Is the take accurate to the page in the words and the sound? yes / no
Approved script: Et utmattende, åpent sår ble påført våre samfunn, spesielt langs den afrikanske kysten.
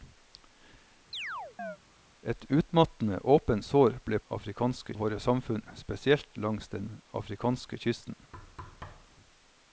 no